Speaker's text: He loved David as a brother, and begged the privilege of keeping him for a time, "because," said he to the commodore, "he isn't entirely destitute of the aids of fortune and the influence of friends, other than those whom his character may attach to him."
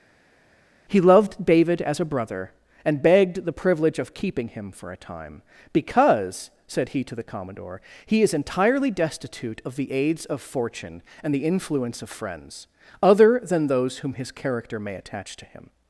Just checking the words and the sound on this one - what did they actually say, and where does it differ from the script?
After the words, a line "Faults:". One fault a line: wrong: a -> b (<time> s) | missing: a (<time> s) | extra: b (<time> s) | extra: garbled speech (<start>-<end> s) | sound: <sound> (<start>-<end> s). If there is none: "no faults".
He loved David as a brother, and begged the privilege of keeping him for a time, "because," said he to the commodore, "he is entirely destitute of the aids of fortune and the influence of friends, other than those whom his character may attach to him."
Faults:
wrong: isn't -> is (8.2 s)